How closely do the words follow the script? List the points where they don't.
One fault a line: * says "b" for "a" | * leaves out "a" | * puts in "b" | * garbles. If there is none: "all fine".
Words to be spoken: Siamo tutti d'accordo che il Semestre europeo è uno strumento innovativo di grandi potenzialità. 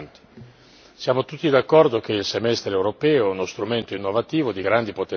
all fine